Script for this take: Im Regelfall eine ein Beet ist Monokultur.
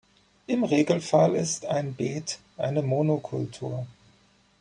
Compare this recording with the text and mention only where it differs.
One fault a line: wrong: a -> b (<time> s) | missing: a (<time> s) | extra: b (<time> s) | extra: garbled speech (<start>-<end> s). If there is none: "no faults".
wrong: eine -> ist (1.4 s)
wrong: ist -> eine (2.6 s)